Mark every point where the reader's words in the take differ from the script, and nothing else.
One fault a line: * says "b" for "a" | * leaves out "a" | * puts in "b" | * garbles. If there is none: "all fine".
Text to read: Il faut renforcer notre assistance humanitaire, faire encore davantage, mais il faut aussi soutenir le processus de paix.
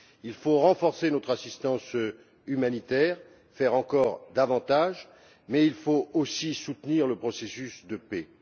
all fine